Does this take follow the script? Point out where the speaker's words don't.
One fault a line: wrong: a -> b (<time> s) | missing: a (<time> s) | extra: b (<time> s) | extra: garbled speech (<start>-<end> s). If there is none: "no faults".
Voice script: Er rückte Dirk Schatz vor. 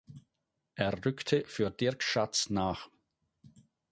extra: für (1.4 s)
wrong: vor -> nach (2.5 s)